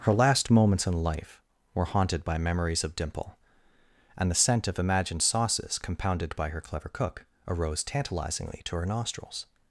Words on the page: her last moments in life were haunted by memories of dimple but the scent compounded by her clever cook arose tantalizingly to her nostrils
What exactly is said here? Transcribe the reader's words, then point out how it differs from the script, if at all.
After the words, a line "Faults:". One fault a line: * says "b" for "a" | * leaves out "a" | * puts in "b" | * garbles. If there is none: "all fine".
her last moments in life were haunted by memories of dimple and the scent of imagined sauces compounded by her clever cook arose tantalizingly to her nostrils
Faults:
* says "and" for "but"
* puts in "of imagined sauces"